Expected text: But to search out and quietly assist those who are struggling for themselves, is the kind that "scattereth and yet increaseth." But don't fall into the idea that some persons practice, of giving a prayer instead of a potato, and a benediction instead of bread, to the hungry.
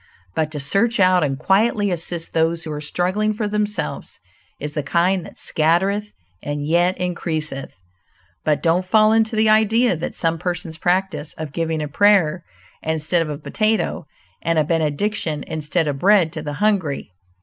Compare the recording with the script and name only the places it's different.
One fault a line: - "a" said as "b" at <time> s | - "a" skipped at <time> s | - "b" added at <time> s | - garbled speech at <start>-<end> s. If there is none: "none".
none